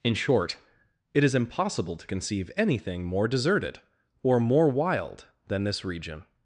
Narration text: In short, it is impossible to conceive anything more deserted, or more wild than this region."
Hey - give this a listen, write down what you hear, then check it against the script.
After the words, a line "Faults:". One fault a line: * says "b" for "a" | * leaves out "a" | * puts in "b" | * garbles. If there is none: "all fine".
In short, it is impossible to conceive anything more deserted, or more wild than this region."
Faults:
all fine